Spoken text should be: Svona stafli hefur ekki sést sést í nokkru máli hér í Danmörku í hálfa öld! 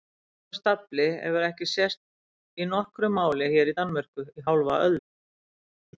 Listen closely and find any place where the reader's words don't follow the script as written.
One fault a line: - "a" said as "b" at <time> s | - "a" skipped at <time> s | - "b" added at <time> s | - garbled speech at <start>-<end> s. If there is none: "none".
- "sést" skipped at 2.0 s